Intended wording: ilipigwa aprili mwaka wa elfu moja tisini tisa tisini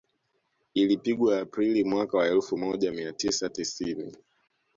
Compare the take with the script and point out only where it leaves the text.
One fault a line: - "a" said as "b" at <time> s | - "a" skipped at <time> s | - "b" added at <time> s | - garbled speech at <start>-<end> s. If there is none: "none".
- "tisini" said as "mia" at 2.9 s